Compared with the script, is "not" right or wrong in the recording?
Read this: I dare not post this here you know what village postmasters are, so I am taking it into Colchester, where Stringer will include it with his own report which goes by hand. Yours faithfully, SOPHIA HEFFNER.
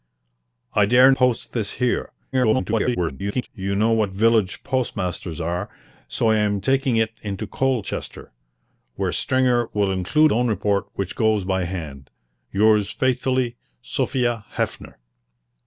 wrong